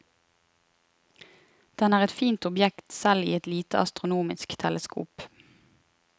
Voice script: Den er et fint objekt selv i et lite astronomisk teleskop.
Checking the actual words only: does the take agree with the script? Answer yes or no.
yes